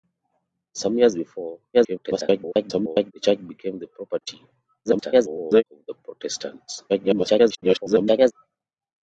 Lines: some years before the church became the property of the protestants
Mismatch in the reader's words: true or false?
true